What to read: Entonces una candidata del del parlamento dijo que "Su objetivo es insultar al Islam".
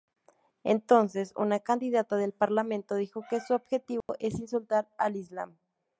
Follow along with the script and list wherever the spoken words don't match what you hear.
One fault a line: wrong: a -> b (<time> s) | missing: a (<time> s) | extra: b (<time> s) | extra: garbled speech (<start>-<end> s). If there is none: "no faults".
missing: del (2.3 s)